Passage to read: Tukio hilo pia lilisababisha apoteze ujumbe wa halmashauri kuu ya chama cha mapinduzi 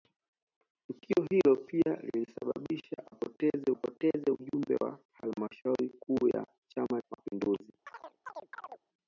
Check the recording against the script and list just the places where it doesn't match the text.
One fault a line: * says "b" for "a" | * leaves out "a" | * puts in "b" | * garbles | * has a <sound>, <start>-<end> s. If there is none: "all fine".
* puts in "apoteze"
* leaves out "cha"
* has a chirp, 7.9-8.8 s